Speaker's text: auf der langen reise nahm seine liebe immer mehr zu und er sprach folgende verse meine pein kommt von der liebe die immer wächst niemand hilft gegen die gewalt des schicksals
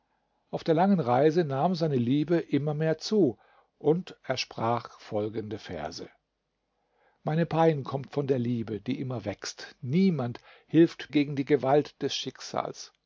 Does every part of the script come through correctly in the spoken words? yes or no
yes